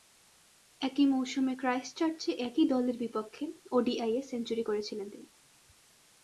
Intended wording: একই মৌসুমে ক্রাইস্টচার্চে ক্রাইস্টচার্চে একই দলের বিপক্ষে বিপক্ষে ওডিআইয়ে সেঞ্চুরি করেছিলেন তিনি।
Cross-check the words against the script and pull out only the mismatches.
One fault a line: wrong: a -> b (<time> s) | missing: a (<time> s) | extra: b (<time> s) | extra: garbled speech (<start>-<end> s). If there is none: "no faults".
missing: ক্রাইস্টচার্চে (2.3 s)
missing: বিপক্ষে (3.4 s)